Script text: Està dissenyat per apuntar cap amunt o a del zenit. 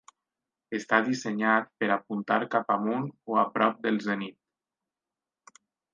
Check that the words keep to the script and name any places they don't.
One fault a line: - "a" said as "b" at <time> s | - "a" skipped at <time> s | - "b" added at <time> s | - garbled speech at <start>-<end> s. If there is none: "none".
- "prop" added at 3.6 s